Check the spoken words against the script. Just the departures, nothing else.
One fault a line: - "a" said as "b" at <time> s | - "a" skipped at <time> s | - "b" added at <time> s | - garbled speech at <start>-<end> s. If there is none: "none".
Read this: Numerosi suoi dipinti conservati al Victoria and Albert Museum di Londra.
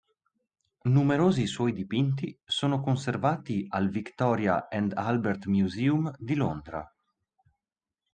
- "sono" added at 2.4 s